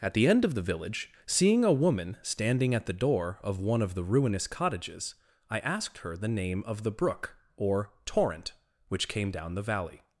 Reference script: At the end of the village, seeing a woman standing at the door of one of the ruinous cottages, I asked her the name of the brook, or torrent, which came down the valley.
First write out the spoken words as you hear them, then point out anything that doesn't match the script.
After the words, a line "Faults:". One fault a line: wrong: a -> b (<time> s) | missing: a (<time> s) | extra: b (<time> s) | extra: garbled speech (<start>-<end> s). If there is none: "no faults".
At the end of the village, seeing a woman standing at the door of one of the ruinous cottages, I asked her the name of the brook, or torrent, which came down the valley.
Faults:
no faults